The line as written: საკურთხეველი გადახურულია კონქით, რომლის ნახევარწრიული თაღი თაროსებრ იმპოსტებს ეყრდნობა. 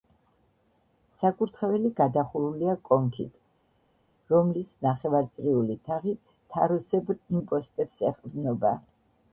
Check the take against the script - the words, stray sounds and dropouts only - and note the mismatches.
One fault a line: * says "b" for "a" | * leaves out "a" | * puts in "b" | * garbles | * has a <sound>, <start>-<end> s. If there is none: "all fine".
all fine